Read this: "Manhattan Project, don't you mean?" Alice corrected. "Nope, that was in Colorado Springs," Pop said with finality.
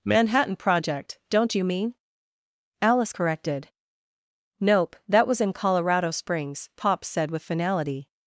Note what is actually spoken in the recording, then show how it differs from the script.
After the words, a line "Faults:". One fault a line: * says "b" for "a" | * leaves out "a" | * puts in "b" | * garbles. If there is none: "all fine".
"Manhattan Project, don't you mean?" Alice corrected. "Nope, that was in Colorado Springs," Pop said with finality.
Faults:
all fine